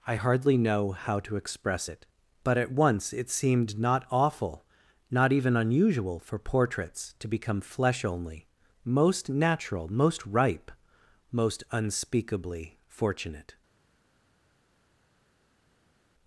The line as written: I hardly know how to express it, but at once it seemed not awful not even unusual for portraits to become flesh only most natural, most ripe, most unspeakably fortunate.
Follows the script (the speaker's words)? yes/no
yes